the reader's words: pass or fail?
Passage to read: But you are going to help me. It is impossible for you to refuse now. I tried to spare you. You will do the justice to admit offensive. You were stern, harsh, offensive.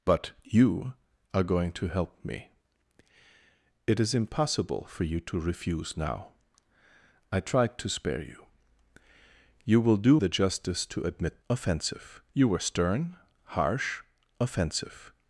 pass